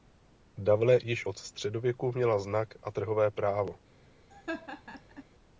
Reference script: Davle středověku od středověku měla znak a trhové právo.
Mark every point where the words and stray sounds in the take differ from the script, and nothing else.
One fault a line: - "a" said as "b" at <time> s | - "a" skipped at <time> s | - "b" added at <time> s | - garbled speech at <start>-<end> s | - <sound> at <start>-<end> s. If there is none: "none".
- "středověku" said as "již" at 1.0 s
- laugh at 4.3-5.2 s